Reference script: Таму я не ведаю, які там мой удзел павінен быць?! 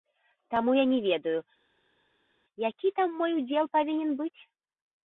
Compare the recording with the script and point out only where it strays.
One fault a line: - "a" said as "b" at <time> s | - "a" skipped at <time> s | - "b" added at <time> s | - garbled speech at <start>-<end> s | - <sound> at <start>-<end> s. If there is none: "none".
none